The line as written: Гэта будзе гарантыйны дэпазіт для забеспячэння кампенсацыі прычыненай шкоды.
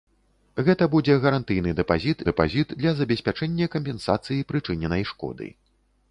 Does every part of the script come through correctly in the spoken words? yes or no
no